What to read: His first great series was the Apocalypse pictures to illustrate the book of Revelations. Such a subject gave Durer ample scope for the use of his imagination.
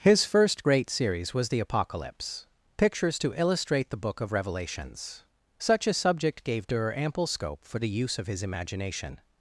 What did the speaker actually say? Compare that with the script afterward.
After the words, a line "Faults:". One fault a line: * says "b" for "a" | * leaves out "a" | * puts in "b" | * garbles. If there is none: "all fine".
His first great series was the Apocalypse pictures to illustrate the book of Revelations. Such a subject gave Durer ample scope for the use of his imagination.
Faults:
all fine